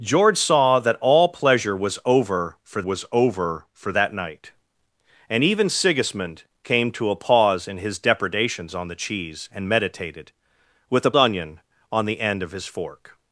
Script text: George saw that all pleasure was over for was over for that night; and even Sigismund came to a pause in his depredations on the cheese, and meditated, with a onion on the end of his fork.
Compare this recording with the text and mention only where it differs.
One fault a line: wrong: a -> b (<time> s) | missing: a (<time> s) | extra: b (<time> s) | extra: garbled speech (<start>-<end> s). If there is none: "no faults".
no faults